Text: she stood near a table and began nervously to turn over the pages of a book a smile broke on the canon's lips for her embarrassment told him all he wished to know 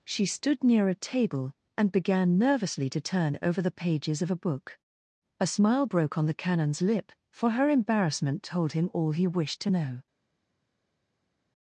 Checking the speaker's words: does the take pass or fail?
fail